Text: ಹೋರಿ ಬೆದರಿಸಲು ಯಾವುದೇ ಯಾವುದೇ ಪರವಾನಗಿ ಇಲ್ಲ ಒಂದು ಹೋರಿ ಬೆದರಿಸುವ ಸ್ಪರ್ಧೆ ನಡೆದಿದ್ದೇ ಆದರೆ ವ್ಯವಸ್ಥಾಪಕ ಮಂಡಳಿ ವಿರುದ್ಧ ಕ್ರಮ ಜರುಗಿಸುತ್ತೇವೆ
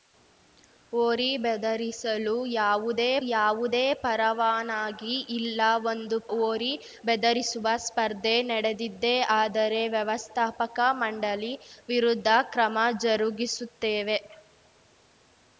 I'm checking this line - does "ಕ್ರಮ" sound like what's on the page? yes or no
yes